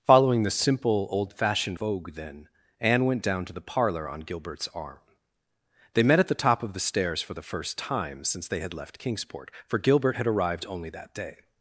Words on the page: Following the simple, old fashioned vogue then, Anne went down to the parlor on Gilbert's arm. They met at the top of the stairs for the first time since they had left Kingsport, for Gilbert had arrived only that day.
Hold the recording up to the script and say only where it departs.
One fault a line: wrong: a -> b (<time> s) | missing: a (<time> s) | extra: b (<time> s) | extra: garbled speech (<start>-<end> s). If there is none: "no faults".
no faults